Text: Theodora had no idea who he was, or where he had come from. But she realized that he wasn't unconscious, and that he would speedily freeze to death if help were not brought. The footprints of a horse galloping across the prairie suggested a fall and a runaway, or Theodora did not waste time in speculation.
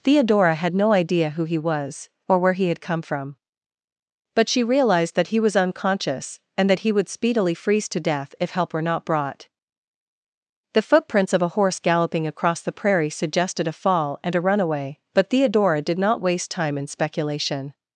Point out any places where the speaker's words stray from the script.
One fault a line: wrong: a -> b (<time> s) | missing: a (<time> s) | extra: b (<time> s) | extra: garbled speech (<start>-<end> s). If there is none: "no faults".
wrong: wasn't -> was (5.4 s)
wrong: or -> but (15.1 s)